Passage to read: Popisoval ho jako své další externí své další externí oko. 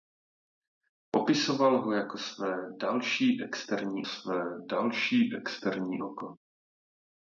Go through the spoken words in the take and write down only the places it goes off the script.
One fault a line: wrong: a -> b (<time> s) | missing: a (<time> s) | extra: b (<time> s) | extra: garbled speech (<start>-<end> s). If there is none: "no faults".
no faults